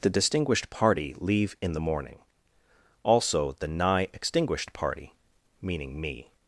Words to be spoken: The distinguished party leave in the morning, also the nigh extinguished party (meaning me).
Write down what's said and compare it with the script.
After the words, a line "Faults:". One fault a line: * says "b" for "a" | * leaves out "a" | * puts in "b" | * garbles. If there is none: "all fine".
The distinguished party leave in the morning, also the nigh extinguished party (meaning me).
Faults:
all fine